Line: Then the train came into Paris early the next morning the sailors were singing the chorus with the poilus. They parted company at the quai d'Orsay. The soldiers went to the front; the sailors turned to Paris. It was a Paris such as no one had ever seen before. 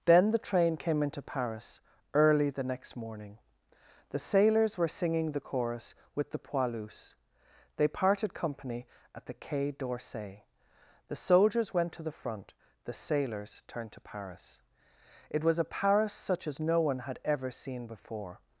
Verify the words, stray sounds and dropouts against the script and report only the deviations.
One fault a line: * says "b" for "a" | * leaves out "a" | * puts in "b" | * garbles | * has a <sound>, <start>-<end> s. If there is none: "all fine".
all fine